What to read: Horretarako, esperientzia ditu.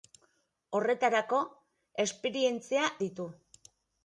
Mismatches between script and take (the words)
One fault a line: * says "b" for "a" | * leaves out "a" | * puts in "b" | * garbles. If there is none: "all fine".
all fine